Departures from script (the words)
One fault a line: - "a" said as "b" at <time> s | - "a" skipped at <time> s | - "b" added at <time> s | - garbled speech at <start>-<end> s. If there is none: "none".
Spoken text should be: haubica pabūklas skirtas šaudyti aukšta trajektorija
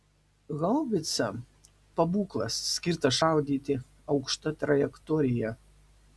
none